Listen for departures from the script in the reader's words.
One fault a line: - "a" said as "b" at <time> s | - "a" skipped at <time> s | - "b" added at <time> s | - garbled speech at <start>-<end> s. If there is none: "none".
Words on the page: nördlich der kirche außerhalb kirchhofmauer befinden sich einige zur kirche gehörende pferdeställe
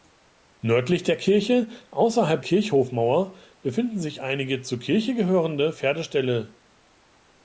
none